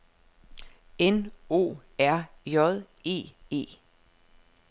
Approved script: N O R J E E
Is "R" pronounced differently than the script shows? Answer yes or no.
no